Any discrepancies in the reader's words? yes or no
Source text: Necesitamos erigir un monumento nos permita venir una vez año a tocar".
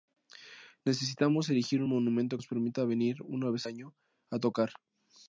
no